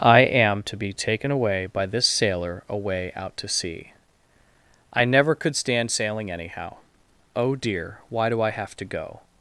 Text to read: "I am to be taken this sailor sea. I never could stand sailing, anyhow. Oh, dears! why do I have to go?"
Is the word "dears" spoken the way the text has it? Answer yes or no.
no